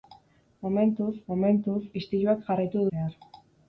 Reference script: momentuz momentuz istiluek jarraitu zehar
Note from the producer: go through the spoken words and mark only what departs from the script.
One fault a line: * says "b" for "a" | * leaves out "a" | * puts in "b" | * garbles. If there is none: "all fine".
all fine